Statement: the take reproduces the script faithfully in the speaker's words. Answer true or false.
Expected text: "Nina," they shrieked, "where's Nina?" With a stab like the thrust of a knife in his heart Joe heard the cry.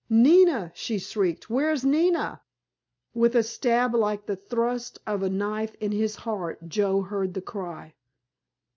false